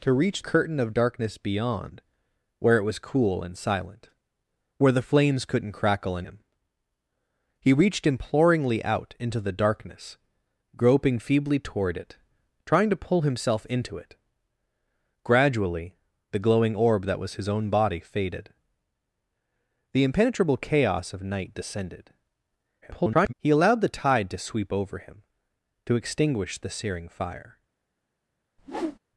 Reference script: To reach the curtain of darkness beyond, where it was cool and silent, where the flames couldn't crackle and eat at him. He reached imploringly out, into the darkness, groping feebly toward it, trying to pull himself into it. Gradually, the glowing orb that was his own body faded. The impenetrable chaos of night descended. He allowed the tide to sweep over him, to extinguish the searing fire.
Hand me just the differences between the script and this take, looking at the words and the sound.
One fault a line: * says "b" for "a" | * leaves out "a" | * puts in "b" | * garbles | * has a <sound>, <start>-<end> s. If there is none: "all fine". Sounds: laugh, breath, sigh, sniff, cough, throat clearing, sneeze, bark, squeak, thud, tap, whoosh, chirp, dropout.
* leaves out "the"
* leaves out "eat at"
* garbles
* has a whoosh, 28.6-29.0 s